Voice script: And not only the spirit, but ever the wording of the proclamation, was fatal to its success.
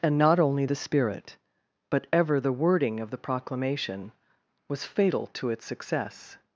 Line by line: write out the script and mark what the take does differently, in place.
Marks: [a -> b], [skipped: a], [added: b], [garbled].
And not only the spirit, but ever the wording of the proclamation, was fatal to its success.